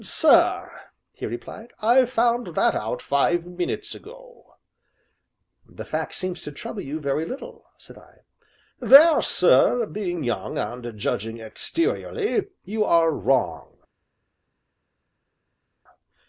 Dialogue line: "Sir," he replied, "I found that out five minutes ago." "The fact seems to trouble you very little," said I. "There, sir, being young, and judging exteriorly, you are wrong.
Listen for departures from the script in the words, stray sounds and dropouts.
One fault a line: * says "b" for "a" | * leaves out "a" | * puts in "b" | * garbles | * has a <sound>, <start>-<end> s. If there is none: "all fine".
all fine